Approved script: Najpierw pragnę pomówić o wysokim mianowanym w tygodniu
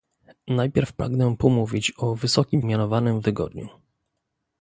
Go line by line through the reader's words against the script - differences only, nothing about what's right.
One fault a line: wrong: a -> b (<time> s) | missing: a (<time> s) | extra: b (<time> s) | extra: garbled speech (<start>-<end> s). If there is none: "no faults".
no faults